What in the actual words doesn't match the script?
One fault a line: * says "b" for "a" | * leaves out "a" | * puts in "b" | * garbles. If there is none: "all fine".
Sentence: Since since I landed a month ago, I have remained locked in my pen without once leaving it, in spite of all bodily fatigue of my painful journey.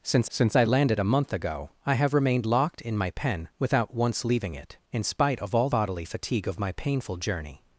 all fine